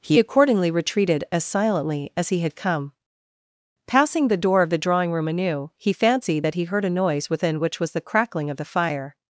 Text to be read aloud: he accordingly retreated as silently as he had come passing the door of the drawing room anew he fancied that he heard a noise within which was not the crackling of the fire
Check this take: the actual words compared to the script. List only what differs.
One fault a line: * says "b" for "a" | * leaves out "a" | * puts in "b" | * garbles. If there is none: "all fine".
* leaves out "not"